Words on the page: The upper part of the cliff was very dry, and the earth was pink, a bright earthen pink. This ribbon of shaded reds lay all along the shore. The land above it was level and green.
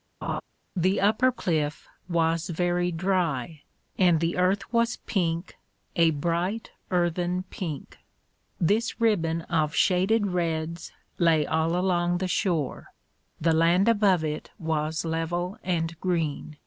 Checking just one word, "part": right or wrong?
wrong